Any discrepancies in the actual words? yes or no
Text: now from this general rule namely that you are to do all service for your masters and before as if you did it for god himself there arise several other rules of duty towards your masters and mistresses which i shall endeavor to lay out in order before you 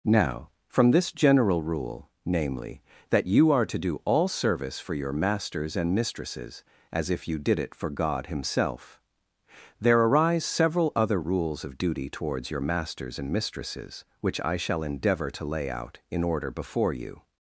yes